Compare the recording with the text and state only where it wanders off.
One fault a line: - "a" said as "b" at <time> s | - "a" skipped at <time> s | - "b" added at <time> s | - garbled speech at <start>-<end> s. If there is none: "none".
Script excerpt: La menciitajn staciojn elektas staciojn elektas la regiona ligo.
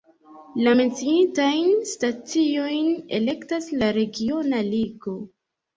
- "staciojn elektas" skipped at 3.7 s